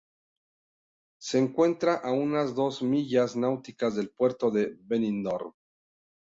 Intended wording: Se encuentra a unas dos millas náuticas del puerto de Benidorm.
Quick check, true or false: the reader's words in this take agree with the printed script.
true